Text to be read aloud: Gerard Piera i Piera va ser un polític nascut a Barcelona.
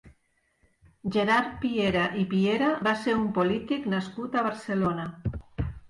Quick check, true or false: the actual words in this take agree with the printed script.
true